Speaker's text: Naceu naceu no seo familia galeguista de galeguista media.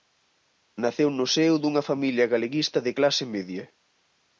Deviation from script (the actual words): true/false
true